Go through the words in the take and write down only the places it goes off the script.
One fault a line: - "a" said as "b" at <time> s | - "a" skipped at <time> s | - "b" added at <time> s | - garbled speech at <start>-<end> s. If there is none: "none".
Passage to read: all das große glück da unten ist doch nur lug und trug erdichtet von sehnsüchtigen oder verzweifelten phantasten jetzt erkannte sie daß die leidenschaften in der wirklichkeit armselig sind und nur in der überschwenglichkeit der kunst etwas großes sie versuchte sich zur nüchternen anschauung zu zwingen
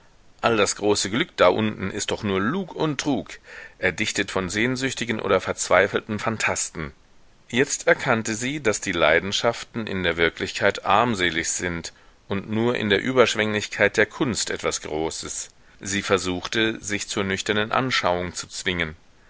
none